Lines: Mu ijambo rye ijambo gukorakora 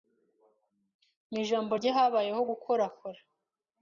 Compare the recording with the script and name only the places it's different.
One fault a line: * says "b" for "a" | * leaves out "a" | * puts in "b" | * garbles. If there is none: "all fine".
* says "habayeho" for "ijambo"